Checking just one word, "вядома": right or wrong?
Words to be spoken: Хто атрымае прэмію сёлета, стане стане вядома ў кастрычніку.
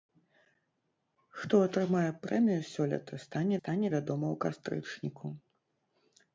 right